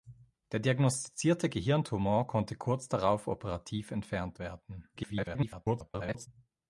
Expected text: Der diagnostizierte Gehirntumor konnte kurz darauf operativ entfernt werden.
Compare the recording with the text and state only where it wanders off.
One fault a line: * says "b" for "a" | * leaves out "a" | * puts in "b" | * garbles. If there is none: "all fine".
* garbles